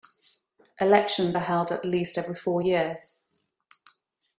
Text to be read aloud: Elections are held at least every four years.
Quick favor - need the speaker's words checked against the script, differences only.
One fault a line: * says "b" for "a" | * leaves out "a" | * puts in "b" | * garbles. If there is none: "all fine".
all fine